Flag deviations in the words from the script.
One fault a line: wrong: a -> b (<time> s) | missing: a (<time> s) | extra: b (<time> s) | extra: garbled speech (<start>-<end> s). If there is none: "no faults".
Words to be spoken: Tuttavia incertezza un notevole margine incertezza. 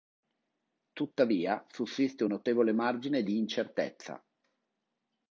wrong: incertezza -> sussiste (1.7 s)
extra: di (3.2 s)